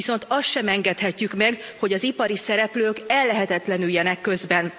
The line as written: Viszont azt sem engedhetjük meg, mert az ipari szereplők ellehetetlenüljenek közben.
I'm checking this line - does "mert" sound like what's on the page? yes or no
no